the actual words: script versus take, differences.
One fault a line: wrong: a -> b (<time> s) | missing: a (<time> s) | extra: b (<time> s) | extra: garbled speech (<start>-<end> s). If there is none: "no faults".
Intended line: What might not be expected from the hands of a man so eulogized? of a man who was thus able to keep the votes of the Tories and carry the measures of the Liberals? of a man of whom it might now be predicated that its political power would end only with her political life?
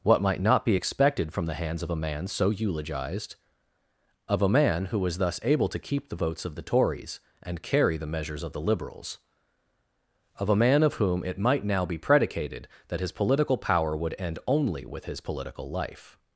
wrong: its -> his (13.0 s)
wrong: her -> his (15.0 s)